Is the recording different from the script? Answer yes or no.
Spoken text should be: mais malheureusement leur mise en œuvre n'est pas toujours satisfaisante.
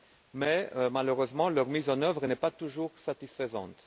no